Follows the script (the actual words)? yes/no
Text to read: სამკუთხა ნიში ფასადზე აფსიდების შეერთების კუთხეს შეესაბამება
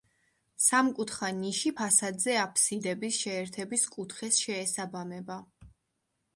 yes